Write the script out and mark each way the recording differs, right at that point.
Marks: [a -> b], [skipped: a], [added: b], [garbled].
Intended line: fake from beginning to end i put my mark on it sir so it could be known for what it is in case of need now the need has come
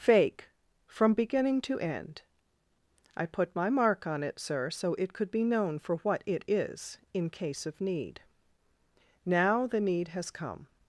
fake from beginning to end i put my mark on it sir so it could be known for what it is in case of need now the need has come